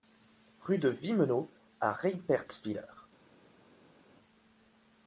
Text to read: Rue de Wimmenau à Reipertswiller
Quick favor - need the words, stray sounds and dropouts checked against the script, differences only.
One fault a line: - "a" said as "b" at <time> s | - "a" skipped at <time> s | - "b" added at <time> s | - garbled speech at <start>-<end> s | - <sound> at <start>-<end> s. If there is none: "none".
none